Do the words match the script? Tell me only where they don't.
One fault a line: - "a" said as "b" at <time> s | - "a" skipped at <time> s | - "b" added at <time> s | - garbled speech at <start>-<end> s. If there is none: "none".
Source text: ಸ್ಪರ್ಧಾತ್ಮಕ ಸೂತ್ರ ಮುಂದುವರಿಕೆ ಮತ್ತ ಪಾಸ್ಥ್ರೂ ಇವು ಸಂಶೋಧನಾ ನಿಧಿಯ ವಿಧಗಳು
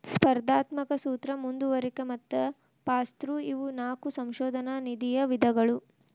- "ನಾಕು" added at 3.8 s